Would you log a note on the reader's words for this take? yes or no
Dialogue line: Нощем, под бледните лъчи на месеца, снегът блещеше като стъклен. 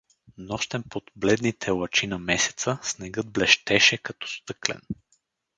no